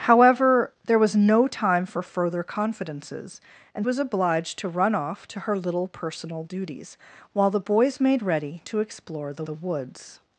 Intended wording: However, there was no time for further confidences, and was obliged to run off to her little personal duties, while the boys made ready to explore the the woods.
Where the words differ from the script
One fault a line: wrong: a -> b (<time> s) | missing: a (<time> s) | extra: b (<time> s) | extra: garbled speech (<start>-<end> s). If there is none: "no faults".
no faults